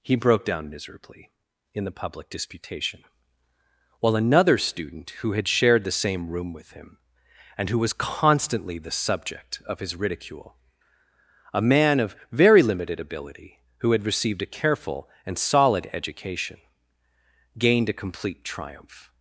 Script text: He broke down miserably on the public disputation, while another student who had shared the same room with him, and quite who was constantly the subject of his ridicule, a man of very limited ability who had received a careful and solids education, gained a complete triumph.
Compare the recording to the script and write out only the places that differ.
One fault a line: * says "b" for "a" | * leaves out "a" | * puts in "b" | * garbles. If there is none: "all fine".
* says "in" for "on"
* leaves out "quite"
* says "solid" for "solids"